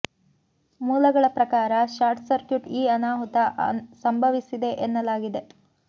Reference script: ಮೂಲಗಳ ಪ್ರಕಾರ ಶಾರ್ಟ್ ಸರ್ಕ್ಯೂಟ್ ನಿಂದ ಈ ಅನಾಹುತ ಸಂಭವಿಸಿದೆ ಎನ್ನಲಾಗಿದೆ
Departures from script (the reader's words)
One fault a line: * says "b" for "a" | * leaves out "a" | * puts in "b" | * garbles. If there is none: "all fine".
* leaves out "ನಿಂದ"